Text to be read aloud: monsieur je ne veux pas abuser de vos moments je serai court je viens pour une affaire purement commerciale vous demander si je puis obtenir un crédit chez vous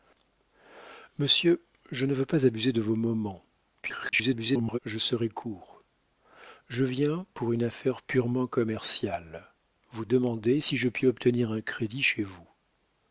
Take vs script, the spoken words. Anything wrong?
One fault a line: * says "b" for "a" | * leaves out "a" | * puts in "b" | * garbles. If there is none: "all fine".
* garbles